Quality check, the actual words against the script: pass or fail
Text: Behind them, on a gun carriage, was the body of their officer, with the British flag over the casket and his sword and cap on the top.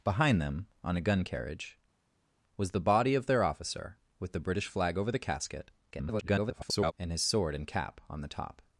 fail